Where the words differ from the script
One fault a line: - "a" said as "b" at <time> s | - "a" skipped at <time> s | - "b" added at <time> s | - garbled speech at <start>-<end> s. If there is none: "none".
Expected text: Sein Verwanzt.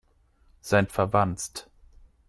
none